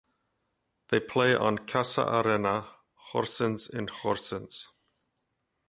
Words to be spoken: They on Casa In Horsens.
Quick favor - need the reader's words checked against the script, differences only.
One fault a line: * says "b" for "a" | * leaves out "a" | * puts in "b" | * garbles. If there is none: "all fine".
* puts in "play"
* puts in "Arena Horsens"